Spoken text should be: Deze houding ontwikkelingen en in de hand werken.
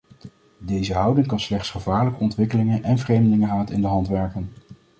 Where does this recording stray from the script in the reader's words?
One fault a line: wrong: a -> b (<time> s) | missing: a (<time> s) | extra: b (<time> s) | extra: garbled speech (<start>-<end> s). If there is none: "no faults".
extra: kan slechts gevaarlijke (1.3 s)
extra: vreemdelingenhaat (3.0 s)